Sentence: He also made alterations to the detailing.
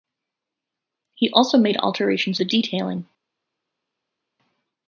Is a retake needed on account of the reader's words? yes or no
yes